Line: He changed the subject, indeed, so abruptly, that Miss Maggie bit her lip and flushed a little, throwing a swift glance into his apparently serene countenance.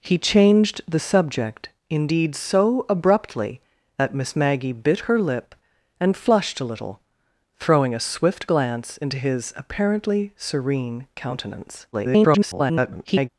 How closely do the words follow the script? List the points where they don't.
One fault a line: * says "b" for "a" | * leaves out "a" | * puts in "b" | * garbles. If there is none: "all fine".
* garbles